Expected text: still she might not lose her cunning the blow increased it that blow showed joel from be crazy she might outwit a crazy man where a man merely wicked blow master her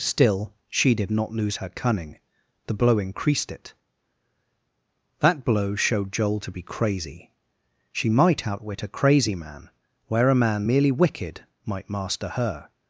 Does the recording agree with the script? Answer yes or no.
no